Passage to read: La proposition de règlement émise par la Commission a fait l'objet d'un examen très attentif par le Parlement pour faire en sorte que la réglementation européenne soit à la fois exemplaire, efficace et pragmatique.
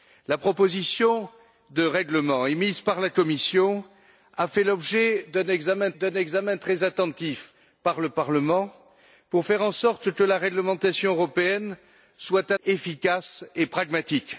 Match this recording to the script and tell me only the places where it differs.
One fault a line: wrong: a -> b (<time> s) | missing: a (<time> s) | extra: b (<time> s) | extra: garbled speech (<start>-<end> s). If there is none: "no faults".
extra: d'un examen (6.0 s)
missing: la fois exemplaire (12.6 s)